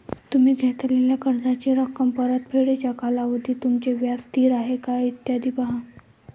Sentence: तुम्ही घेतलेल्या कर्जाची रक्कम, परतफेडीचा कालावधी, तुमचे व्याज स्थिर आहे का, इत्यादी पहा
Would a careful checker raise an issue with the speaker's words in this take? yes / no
no